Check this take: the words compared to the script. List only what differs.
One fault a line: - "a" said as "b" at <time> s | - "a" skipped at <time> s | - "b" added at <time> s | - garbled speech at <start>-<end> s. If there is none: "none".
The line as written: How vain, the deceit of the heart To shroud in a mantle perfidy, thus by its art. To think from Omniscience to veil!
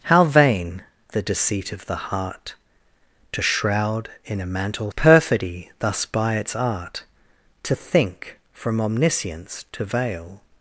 none